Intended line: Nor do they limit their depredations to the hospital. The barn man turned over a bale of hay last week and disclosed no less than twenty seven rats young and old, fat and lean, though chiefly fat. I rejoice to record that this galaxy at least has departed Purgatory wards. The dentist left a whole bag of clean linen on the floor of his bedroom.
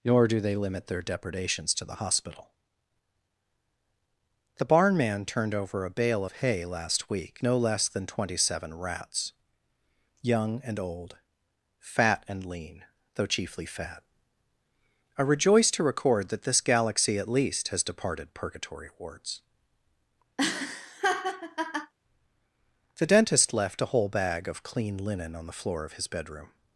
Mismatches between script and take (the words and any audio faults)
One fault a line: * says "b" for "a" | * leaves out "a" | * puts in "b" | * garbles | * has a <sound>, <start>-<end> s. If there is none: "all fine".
* leaves out "and disclosed"
* has a laugh, 20.4-21.9 s